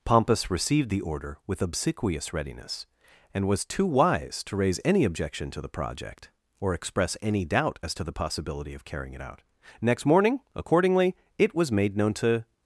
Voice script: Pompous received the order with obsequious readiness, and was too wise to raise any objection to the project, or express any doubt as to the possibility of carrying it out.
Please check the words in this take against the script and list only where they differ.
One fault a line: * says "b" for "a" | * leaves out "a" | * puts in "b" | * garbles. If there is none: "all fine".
* puts in "Next morning accordingly it was made known to"